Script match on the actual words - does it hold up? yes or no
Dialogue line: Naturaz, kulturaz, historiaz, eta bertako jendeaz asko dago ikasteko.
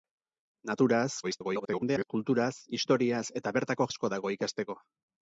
no